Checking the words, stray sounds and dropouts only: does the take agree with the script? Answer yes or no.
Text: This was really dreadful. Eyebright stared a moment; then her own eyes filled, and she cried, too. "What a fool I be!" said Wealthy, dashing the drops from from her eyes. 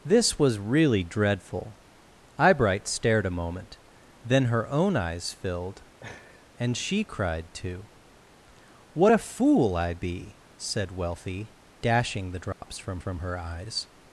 no